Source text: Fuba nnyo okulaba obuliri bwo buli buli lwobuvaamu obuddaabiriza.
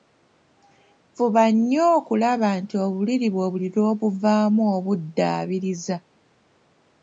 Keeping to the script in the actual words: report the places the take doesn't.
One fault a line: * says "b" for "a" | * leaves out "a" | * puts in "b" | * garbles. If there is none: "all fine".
* puts in "nti"
* leaves out "buli"